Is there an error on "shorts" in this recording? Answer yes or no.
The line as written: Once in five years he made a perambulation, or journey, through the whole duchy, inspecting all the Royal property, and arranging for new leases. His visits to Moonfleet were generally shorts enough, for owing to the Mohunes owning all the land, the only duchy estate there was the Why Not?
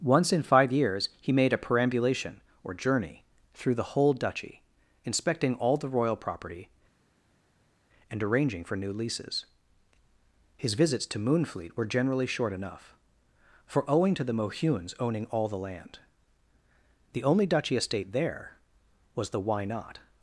yes